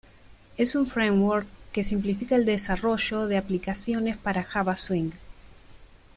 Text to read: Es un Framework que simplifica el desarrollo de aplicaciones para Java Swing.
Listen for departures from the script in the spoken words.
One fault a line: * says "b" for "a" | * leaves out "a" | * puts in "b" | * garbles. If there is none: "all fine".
all fine